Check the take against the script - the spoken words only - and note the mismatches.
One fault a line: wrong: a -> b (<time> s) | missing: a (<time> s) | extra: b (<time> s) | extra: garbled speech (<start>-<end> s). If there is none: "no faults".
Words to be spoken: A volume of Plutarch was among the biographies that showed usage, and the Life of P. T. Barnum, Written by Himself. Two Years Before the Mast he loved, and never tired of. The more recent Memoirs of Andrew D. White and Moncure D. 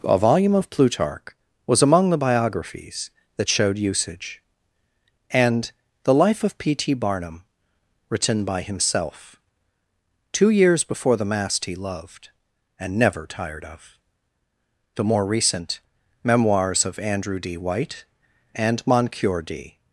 no faults